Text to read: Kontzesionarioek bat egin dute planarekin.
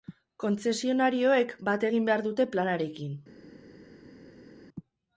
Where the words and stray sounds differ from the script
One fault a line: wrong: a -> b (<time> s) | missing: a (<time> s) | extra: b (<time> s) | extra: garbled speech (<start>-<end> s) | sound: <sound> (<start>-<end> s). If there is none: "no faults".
extra: behar (2.1 s)